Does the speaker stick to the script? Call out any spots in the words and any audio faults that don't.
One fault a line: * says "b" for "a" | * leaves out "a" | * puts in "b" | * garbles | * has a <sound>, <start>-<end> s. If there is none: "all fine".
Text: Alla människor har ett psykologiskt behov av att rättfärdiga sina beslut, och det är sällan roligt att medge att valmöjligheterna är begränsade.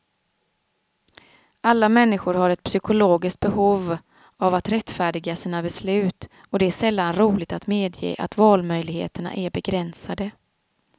all fine